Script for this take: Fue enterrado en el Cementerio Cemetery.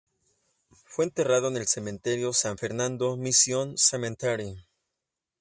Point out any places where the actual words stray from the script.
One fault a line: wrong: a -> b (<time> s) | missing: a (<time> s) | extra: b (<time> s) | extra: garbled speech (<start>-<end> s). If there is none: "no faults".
extra: San Fernando Mission (2.3 s)